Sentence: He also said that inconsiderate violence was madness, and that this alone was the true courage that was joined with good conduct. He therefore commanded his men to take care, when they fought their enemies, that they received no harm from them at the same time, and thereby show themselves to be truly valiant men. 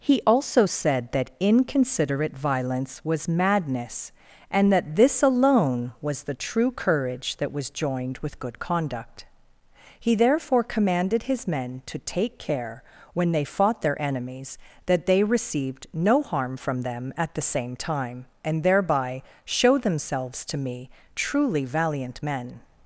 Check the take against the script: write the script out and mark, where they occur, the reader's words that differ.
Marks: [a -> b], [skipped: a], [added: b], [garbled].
He also said that inconsiderate violence was madness, and that this alone was the true courage that was joined with good conduct. He therefore commanded his men to take care, when they fought their enemies, that they received no harm from them at the same time, and thereby show themselves to [be -> me] truly valiant men.